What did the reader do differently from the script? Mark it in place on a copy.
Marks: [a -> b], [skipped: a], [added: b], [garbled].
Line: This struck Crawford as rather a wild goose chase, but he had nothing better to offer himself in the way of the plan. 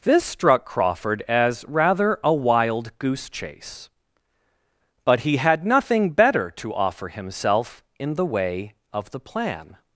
This struck Crawford as rather a wild goose chase, but he had nothing better to offer himself in the way of the plan.